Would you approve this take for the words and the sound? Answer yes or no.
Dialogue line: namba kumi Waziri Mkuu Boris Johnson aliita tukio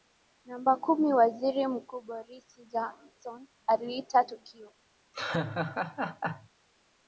no